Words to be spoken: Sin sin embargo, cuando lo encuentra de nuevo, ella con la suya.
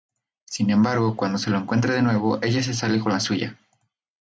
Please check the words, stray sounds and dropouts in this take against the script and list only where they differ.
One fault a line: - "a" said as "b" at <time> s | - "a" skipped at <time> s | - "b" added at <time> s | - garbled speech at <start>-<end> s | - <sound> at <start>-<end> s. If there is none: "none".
- "sin" skipped at 0.7 s
- "se" added at 1.4 s
- "se sale" added at 2.6 s